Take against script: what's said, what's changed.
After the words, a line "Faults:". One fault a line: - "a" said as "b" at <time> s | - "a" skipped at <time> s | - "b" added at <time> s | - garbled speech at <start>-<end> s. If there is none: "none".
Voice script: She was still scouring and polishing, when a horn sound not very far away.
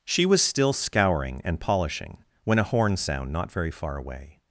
She was still scouring and polishing, when a horn sound not very far away.
Faults:
none